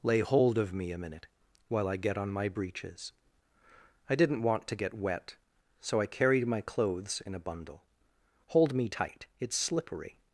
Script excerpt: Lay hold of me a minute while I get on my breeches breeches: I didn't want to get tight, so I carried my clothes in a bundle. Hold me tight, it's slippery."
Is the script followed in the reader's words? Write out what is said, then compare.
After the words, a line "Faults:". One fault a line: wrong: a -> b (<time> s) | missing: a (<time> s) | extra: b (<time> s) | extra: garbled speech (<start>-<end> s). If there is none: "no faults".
Lay hold of me a minute while I get on my breeches: I didn't want to get wet, so I carried my clothes in a bundle. Hold me tight, it's slippery."
Faults:
missing: breeches (3.1 s)
wrong: tight -> wet (4.9 s)